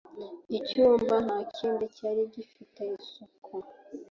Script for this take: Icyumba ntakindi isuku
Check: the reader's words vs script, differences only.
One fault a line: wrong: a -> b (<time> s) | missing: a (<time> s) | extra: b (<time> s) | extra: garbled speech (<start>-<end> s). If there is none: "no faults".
extra: cyari gifite (1.9 s)